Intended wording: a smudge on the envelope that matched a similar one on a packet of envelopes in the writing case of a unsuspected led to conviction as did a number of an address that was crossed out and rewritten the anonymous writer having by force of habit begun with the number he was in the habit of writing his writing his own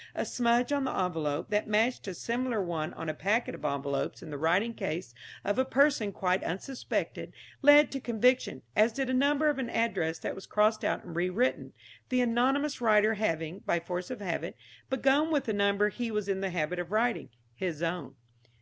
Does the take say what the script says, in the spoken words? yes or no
no